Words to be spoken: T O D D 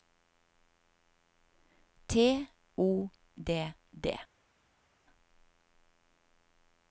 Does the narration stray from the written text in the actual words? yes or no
no